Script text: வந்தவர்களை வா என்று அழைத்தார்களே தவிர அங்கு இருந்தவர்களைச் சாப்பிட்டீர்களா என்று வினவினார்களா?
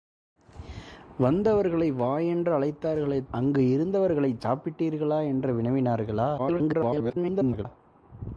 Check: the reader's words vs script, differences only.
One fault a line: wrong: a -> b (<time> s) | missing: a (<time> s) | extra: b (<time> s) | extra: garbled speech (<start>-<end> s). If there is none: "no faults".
missing: தவிர (3.2 s)
extra: garbled speech (6.4-7.7 s)